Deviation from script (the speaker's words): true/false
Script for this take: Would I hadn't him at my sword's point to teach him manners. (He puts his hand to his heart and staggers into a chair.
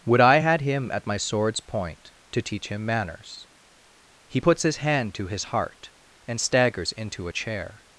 true